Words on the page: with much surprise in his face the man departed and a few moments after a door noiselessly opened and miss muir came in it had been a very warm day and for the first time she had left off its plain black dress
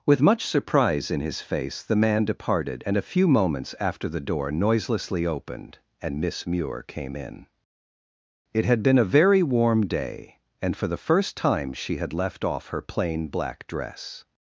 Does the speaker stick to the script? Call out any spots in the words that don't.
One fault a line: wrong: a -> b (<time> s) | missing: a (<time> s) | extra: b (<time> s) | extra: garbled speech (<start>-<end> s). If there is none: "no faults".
wrong: a -> the (4.1 s)
wrong: its -> her (12.7 s)